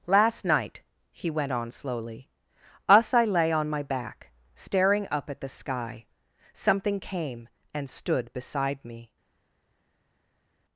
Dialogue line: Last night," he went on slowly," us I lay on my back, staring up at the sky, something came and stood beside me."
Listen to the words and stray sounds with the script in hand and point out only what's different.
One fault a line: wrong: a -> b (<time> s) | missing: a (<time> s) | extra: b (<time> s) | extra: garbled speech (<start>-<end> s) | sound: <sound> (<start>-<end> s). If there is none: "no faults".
no faults